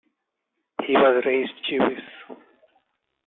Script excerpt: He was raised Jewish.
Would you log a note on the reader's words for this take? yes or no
no